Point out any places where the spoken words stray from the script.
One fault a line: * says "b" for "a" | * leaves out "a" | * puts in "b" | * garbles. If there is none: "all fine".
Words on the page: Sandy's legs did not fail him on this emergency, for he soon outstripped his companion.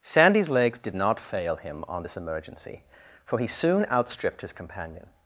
all fine